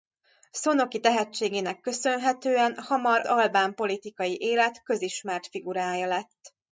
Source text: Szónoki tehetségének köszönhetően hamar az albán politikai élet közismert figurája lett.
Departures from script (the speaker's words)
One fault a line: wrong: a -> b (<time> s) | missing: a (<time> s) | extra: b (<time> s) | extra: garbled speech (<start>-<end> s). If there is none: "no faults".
missing: az (3.2 s)